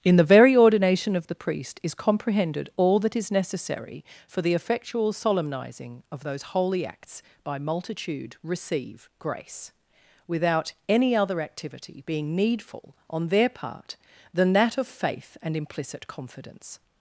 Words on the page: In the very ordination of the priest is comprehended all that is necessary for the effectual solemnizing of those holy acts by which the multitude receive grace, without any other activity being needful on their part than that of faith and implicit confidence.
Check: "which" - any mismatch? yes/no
yes